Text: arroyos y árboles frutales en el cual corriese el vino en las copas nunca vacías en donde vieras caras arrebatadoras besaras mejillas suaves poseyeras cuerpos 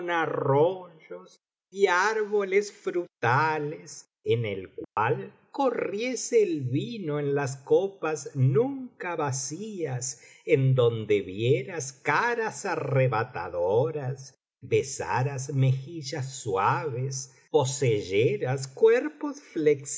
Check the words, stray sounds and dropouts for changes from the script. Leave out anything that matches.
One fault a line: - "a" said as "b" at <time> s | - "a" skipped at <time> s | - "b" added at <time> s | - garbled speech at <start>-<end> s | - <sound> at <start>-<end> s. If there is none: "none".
- dropout at 4.8-5.0 s